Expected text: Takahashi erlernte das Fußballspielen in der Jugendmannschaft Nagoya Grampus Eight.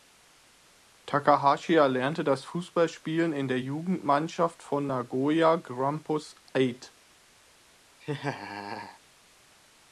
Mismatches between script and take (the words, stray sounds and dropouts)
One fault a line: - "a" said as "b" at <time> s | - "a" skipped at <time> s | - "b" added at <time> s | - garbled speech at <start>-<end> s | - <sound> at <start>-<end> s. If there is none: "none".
- "von" added at 4.6 s
- laugh at 8.0-9.0 s